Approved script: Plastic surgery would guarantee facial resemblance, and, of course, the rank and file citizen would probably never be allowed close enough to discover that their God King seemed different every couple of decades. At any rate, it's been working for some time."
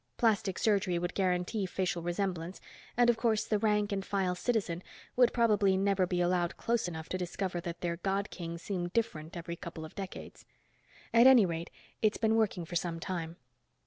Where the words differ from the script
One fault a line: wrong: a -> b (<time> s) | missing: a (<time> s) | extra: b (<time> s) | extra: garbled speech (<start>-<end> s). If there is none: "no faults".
no faults